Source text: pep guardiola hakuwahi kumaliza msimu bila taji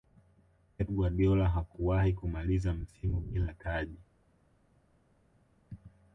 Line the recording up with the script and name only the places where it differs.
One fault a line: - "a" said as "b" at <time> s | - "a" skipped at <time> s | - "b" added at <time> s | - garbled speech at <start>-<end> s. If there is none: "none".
none